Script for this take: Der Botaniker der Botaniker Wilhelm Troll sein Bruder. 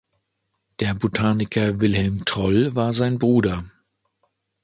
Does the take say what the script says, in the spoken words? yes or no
no